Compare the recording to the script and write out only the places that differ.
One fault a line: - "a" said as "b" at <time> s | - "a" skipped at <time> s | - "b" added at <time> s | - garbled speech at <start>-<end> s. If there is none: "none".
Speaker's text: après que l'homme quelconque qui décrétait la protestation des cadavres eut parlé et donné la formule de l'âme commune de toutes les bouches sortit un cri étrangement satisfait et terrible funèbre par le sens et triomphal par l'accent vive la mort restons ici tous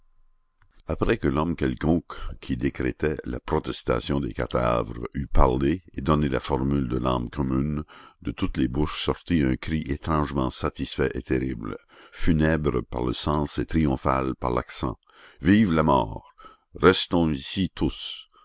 none